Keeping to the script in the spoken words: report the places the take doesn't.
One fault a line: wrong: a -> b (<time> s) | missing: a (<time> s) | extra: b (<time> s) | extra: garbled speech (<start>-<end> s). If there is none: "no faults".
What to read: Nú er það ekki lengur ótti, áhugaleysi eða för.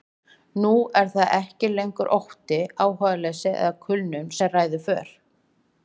extra: kulnun sem ræður (3.9 s)